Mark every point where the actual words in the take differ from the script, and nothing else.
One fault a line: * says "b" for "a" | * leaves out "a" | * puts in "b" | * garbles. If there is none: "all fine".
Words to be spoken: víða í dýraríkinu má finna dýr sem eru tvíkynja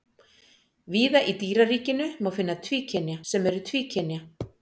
* says "tvíkynja" for "dýr"